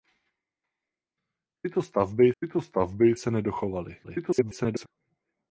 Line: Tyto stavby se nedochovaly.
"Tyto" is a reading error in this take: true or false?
false